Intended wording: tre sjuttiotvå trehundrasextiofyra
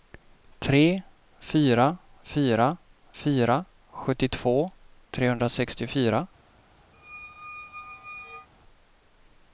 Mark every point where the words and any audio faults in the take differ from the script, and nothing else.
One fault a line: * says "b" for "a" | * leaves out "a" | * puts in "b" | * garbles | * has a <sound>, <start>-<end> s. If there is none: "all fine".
* puts in "fyra fyra fyra"
* has a squeak, 6.9-8.5 s